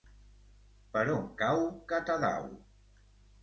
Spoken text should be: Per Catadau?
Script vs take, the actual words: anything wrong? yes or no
yes